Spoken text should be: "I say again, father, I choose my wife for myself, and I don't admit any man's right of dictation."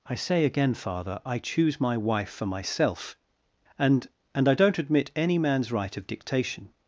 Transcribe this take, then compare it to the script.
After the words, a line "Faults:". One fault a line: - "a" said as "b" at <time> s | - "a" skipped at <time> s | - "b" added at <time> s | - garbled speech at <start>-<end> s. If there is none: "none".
"I say again, father, I choose my wife for myself, and and I don't admit any man's right of dictation."
Faults:
- "and" added at 4.3 s